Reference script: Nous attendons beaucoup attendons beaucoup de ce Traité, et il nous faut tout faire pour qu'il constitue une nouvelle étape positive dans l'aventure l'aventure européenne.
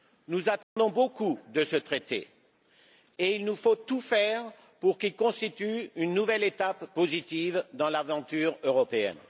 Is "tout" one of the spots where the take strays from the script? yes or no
no